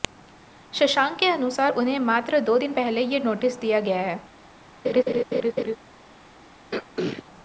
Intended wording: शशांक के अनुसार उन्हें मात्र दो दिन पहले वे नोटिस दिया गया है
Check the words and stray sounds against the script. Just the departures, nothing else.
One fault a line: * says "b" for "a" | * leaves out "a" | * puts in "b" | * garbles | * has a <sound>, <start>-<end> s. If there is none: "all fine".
* says "ये" for "वे"
* has a laugh, 4.8-5.8 s
* has a throat clearing, 6.7-7.2 s